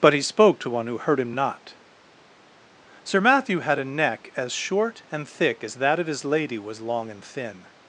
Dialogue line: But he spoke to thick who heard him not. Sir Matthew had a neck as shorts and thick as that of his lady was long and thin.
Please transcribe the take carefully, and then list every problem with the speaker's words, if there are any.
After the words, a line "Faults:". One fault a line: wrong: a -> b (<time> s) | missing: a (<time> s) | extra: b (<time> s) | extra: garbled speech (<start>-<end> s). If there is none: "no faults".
But he spoke to one who heard him not. Sir Matthew had a neck as short and thick as that of his lady was long and thin.
Faults:
wrong: thick -> one (0.7 s)
wrong: shorts -> short (4.5 s)